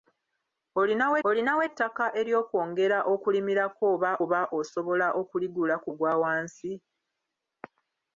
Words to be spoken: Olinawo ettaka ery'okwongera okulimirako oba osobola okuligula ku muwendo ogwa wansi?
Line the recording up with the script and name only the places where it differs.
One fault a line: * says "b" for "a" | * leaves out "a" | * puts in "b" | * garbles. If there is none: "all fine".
* puts in "olinawo"
* puts in "oba"
* leaves out "muwendo"